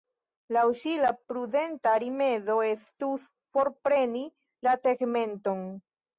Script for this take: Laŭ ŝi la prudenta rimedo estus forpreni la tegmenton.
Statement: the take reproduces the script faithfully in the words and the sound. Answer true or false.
true